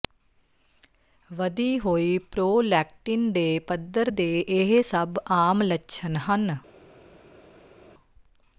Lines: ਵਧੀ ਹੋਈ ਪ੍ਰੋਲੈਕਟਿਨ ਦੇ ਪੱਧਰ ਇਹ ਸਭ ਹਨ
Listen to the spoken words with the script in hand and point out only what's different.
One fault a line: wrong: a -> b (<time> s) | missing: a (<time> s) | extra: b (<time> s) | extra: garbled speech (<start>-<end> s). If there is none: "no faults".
extra: ਦੇ (4.1 s)
extra: ਆਮ ਲੱਛਣ (5.3 s)